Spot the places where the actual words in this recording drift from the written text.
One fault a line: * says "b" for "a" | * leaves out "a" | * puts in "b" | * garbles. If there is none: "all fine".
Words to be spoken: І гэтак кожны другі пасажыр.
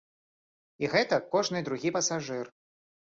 all fine